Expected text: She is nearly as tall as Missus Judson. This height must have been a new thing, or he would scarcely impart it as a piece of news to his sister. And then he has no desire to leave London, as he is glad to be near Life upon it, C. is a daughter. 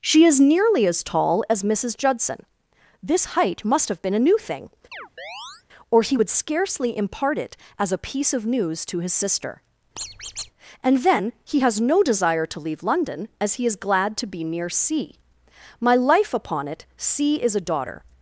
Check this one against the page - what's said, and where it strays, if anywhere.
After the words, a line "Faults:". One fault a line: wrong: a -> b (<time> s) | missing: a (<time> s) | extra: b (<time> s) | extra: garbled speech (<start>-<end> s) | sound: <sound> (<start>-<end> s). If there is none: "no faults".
She is nearly as tall as Missus Judson. This height must have been a new thing, or he would scarcely impart it as a piece of news to his sister. And then he has no desire to leave London, as he is glad to be near C. My life upon it, C. is a daughter.
Faults:
sound: chirp (4.9-5.6 s)
sound: squeak (10.0-10.5 s)
extra: C My (14.7 s)